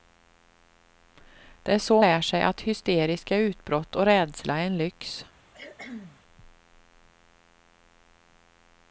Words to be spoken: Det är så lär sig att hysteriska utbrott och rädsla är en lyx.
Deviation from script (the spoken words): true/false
false